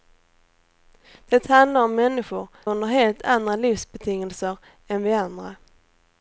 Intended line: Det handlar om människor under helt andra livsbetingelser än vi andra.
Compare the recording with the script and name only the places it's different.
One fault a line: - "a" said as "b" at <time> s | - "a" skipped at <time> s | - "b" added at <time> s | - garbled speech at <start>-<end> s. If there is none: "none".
none